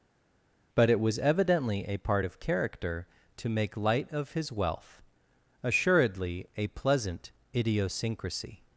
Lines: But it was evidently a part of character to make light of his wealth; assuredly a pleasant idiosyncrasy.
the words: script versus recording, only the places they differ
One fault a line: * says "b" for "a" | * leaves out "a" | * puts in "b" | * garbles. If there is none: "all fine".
all fine